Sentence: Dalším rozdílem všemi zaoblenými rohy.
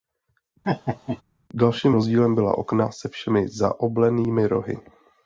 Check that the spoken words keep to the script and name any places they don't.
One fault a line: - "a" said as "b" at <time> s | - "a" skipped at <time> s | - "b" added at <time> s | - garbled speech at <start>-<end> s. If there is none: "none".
- "byla okna se" added at 2.3 s